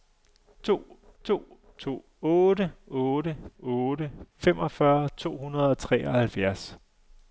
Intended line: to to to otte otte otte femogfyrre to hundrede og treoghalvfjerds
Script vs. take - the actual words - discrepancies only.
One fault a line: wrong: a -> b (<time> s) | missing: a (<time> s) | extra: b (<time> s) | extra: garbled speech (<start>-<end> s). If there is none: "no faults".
no faults